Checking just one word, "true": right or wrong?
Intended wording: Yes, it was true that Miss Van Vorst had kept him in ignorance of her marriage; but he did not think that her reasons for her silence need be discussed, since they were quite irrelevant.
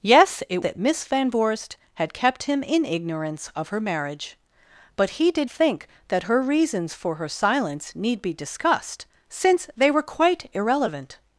wrong